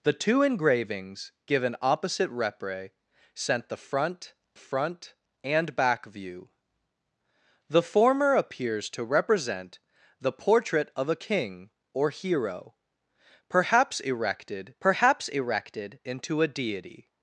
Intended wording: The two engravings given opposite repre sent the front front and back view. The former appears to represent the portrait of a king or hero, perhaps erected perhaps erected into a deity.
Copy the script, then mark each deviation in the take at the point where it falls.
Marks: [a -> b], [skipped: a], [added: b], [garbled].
The two engravings given opposite repre sent the front front and back view. The former appears to represent the portrait of a king or hero, perhaps erected perhaps erected into a deity.